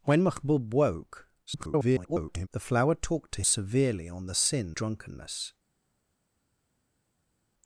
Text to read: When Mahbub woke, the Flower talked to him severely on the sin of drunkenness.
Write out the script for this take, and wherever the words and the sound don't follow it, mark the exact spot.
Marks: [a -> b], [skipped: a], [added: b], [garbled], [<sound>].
When Mahbub woke, [garbled] the Flower talked to [skipped: him] severely on the sin [skipped: of] drunkenness.